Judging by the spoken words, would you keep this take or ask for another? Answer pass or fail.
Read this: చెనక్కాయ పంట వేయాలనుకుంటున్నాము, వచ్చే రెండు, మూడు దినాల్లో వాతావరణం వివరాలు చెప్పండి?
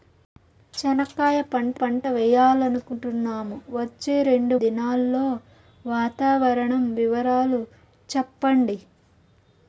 fail